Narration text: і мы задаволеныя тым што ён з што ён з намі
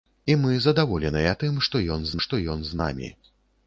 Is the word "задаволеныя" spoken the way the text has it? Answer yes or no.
yes